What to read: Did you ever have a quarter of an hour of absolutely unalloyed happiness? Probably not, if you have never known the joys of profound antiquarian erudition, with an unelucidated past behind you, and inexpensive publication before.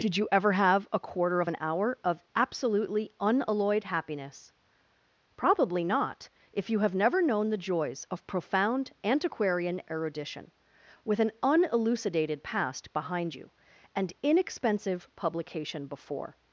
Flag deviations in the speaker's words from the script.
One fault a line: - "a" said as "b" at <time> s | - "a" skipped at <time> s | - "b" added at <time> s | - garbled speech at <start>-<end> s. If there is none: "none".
none